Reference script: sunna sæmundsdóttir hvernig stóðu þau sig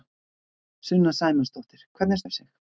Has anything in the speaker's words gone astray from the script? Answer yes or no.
yes